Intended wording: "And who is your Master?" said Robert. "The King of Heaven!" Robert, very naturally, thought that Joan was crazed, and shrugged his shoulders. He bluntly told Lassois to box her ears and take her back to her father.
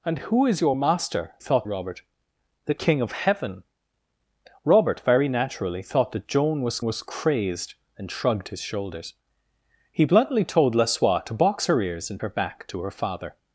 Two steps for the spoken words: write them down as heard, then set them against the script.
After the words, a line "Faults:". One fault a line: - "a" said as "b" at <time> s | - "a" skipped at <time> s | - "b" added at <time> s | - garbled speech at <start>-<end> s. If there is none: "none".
"And who is your Master?" thought Robert. "The King of Heaven!" Robert, very naturally, thought that Joan was was crazed, and shrugged his shoulders. He bluntly told Lassois to box her ears and her back to her father.
Faults:
- "said" said as "thought" at 1.4 s
- "was" added at 6.8 s
- "take" skipped at 12.2 s